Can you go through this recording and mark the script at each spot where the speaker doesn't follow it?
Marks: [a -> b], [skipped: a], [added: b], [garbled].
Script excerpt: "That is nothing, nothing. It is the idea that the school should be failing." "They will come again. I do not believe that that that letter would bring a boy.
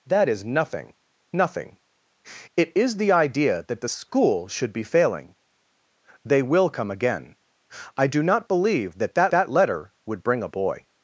"That is nothing, nothing. It is the idea that the school should be failing." "They will come again. I do not believe that that that letter would bring a boy.